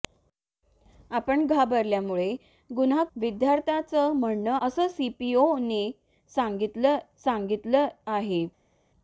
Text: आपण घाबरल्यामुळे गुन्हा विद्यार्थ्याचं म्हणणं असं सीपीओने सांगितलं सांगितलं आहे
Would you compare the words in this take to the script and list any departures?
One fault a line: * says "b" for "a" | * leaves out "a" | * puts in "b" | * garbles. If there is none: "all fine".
all fine